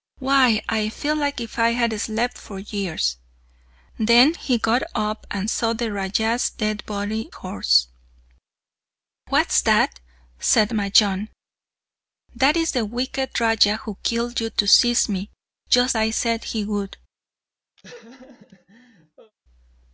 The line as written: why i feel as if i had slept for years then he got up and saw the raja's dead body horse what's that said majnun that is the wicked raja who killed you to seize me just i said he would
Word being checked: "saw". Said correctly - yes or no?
yes